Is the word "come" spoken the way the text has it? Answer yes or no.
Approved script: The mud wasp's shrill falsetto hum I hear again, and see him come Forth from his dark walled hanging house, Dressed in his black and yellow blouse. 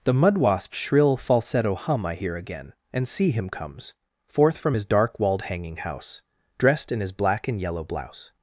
no